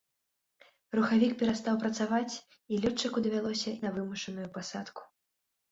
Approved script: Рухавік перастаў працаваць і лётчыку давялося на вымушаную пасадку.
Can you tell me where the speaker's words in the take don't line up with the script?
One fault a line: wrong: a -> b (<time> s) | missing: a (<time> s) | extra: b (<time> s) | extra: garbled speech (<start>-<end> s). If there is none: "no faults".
no faults